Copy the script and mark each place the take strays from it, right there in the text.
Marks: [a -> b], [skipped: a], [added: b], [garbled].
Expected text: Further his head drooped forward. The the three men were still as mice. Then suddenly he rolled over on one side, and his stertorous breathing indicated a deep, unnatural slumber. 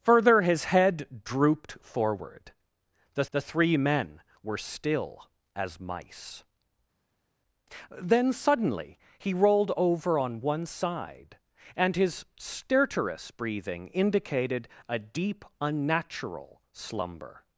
Further his head drooped forward. The the three men were still as mice. Then suddenly he rolled over on one side, and his stertorous breathing indicated a deep, unnatural slumber.